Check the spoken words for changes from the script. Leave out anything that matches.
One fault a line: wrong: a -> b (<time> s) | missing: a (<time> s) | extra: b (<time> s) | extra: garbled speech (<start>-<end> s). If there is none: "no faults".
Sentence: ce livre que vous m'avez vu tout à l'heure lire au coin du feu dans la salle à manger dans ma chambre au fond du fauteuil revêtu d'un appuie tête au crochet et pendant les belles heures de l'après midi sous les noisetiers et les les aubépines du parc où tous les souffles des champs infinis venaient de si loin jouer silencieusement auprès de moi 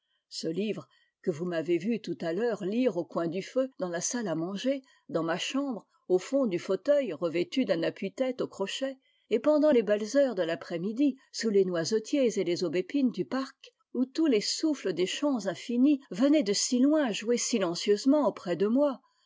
missing: les (12.6 s)